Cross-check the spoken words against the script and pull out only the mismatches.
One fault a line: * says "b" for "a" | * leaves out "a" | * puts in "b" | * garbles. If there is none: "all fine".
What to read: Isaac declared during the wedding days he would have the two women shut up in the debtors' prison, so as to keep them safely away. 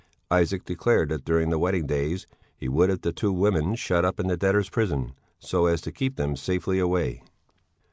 * puts in "that"